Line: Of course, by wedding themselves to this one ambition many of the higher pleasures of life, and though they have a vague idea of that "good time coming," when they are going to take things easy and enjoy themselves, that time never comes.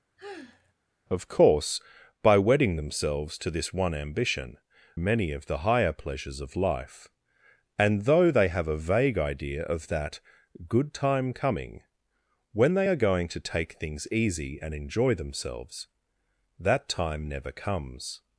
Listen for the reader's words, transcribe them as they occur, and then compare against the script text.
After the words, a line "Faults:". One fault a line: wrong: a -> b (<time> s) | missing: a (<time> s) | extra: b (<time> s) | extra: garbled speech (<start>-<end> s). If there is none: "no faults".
Of course, by wedding themselves to this one ambition many of the higher pleasures of life, and though they have a vague idea of that "good time coming," when they are going to take things easy and enjoy themselves, that time never comes.
Faults:
no faults